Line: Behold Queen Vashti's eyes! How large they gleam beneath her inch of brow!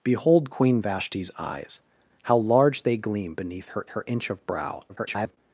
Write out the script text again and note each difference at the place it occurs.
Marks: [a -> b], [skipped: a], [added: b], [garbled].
Behold Queen Vashti's eyes! How large they gleam beneath her [added: her] inch of brow! [garbled]